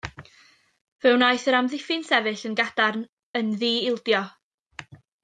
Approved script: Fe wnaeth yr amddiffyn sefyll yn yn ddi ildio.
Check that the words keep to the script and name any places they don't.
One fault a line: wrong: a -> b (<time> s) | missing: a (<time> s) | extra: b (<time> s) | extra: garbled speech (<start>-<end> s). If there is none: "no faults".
extra: gadarn (2.6 s)